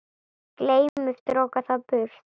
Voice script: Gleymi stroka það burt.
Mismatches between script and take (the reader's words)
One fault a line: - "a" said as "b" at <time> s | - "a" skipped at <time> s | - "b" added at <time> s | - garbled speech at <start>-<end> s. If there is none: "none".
none